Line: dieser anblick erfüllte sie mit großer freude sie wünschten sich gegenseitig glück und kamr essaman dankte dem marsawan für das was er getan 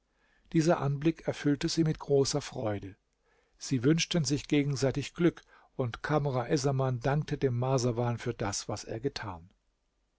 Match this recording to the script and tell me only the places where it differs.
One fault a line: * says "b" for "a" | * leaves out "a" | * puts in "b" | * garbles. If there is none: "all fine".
all fine